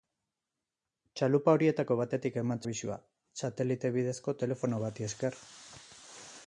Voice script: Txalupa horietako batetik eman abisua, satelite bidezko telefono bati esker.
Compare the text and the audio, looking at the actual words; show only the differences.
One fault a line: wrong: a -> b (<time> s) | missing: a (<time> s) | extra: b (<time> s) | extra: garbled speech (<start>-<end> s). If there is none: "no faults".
no faults